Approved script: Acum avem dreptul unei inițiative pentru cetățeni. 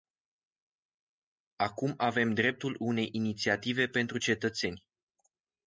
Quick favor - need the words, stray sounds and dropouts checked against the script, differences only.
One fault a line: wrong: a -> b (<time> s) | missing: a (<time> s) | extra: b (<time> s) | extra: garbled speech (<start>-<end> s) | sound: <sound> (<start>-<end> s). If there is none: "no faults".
no faults